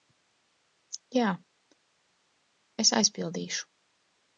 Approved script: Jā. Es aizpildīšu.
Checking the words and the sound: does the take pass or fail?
pass